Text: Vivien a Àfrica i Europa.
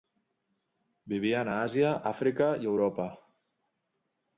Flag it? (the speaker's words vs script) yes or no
yes